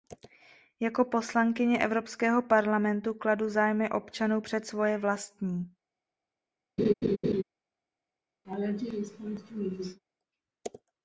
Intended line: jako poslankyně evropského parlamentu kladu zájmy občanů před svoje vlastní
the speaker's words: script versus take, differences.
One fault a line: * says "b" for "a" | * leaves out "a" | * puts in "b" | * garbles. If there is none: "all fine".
all fine